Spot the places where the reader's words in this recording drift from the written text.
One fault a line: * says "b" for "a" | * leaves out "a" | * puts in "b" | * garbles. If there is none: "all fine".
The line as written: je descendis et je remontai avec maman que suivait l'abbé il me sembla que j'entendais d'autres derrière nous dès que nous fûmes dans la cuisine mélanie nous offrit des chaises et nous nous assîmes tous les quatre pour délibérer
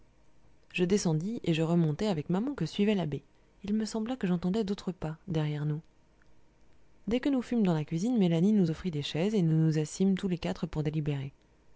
* puts in "pas"